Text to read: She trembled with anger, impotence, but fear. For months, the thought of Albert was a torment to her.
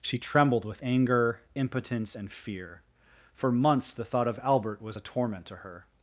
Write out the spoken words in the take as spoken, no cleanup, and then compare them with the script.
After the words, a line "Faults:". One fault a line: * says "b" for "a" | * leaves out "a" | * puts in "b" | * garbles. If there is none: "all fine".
She trembled with anger, impotence, and fear. For months, the thought of Albert was a torment to her.
Faults:
* says "and" for "but"